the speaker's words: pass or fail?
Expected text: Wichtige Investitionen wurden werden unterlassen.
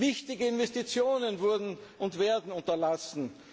fail